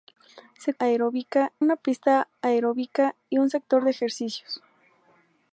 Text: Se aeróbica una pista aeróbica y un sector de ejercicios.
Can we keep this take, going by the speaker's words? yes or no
yes